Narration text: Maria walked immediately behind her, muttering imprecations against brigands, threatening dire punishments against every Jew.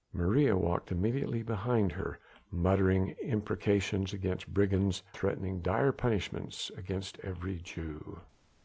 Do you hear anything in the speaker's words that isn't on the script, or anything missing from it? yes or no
no